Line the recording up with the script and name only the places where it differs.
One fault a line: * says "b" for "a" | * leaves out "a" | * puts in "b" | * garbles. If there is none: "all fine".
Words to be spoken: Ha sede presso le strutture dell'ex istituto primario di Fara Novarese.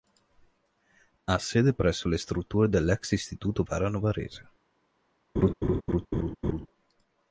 * leaves out "primario di"